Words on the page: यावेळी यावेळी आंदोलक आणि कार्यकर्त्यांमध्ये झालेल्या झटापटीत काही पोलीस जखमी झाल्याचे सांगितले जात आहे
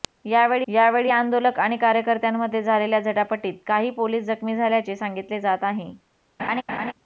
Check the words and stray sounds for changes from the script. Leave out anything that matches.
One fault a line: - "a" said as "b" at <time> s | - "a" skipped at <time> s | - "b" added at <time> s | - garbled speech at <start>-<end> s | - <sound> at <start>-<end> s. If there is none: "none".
- laugh at 6.4-6.9 s